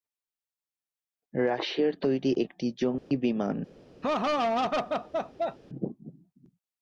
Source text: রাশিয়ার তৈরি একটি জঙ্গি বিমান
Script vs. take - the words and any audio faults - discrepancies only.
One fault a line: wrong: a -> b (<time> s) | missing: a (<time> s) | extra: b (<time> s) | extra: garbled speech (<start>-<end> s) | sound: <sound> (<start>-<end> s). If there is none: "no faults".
sound: dropout (3.0-3.1 s)
sound: laugh (4.0-5.6 s)